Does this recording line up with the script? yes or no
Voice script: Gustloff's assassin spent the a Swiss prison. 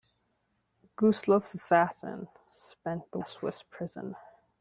yes